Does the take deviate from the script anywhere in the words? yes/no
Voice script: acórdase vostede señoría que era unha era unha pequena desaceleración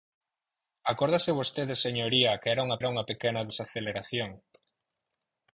no